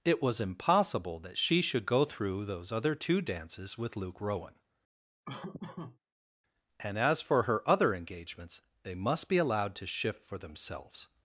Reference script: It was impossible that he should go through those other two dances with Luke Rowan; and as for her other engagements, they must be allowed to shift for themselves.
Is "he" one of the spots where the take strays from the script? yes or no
yes